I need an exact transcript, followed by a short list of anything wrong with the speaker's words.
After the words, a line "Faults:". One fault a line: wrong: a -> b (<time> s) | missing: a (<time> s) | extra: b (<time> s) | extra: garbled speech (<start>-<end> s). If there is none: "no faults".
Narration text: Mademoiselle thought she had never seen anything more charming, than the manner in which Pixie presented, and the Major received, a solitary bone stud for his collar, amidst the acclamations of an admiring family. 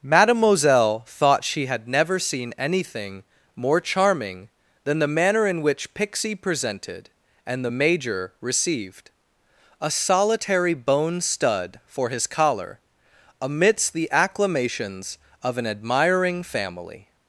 Mademoiselle thought she had never seen anything more charming, than the manner in which Pixie presented, and the Major received, a solitary bone stud for his collar, amidst the acclamations of an admiring family.
Faults:
no faults